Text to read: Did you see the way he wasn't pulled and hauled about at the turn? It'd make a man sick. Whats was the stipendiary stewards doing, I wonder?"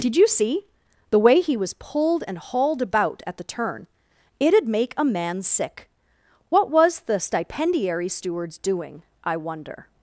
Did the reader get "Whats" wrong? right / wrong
wrong